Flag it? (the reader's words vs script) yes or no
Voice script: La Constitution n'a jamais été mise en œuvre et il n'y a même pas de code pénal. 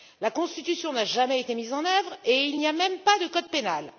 no